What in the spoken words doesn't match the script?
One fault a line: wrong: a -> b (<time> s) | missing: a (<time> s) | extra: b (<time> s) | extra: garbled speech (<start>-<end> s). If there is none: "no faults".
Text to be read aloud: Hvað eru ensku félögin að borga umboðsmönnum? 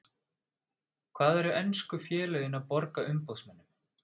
no faults